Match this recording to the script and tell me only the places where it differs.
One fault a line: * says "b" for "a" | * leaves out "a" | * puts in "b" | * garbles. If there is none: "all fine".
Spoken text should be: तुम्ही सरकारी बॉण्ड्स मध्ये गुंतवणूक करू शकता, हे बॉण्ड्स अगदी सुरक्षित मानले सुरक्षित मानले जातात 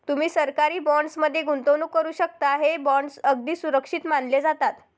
* leaves out "सुरक्षित मानले"